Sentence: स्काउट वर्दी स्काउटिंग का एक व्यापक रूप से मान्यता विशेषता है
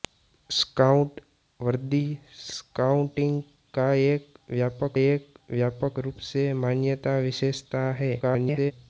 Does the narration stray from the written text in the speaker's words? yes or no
yes